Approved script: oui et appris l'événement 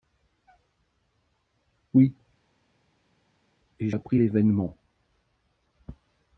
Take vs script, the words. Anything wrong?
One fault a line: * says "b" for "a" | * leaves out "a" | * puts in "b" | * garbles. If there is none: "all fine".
all fine